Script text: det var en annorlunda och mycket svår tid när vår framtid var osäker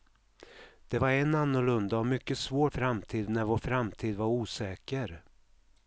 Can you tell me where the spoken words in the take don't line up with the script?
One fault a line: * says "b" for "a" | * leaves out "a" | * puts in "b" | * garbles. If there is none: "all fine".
* says "framtid" for "tid"